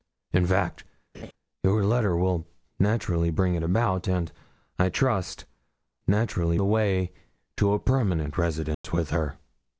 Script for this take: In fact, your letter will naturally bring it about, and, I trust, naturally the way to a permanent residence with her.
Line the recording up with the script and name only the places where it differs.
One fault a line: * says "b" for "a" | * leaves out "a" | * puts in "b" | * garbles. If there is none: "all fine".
all fine